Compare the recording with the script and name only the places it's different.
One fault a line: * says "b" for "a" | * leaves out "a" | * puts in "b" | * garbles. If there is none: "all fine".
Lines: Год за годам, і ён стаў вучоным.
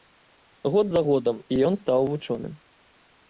all fine